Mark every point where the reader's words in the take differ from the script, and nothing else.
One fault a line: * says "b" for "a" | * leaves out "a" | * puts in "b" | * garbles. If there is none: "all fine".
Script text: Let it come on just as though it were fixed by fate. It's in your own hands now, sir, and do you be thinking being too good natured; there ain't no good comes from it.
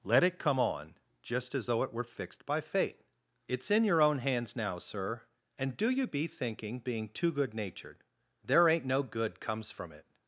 all fine